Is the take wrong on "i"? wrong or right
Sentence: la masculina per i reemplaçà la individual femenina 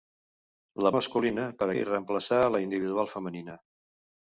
right